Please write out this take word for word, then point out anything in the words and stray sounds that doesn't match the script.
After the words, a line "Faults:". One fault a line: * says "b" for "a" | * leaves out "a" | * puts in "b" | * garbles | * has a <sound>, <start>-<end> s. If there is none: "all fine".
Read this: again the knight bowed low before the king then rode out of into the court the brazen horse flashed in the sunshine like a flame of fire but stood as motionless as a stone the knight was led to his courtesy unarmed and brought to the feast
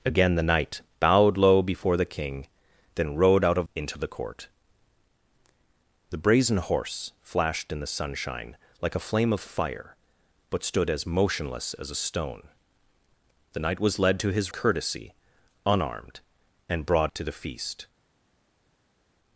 again the knight bowed low before the king then rode out of into the court the brazen horse flashed in the sunshine like a flame of fire but stood as motionless as a stone the knight was led to his courtesy unarmed and brought to the feast
Faults:
all fine